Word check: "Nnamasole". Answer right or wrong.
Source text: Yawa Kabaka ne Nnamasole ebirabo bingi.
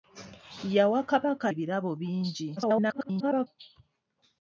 wrong